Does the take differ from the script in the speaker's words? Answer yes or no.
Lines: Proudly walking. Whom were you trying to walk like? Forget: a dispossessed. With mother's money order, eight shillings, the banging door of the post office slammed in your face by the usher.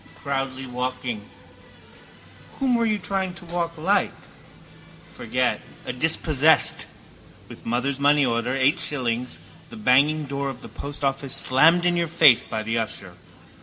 no